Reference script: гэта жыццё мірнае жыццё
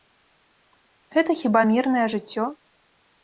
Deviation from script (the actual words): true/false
true